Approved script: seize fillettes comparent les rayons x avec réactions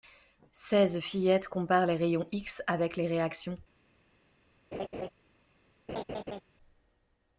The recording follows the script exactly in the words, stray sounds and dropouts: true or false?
false